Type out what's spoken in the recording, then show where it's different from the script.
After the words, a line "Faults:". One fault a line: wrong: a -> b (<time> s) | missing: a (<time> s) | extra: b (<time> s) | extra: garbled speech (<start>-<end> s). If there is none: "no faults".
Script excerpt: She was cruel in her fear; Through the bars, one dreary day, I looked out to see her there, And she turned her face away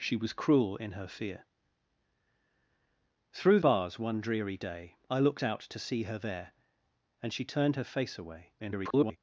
She was cruel in her fear; Through bars, one dreary day, I looked out to see her there, And she turned her face away [garbled]
Faults:
missing: the (3.6 s)
extra: garbled speech (8.6-9.2 s)